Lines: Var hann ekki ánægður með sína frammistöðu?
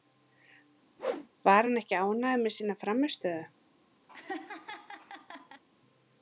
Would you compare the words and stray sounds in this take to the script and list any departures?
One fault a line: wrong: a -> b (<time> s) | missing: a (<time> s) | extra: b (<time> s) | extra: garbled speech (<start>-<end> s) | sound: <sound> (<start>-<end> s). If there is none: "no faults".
sound: whoosh (1.0-1.3 s)
sound: laugh (4.1-5.6 s)